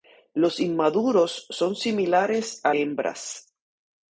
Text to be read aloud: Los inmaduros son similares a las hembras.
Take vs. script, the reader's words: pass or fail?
fail